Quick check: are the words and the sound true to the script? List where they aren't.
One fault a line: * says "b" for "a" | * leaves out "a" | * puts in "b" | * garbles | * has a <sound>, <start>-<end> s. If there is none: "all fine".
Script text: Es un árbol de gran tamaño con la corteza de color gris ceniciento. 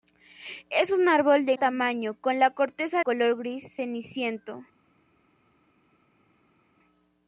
* leaves out "gran"
* leaves out "de"